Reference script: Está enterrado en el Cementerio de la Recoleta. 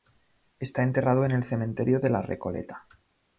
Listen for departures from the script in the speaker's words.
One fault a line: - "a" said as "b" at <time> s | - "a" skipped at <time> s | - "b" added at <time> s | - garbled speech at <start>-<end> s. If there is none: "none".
none